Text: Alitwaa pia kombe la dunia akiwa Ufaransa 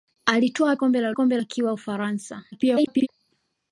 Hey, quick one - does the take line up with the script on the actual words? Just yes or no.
no